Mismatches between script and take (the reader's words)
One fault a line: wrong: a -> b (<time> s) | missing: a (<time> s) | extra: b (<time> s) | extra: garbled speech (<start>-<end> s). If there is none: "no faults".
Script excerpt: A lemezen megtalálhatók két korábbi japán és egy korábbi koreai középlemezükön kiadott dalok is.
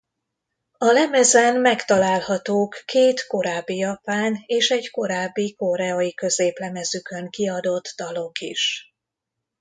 no faults